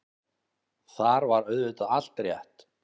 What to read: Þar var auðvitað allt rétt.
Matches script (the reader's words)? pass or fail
pass